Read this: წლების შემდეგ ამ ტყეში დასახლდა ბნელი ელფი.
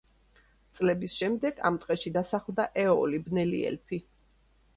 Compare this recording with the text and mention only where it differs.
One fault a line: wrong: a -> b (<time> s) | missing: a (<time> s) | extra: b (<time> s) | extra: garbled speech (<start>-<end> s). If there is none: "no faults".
extra: ეოლი (2.9 s)